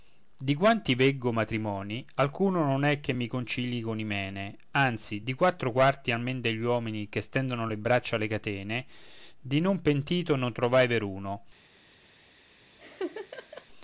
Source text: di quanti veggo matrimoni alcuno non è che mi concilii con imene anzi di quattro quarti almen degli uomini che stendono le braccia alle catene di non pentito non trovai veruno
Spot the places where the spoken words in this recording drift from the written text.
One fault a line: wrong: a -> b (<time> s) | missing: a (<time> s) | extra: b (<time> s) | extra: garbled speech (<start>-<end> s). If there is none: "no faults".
no faults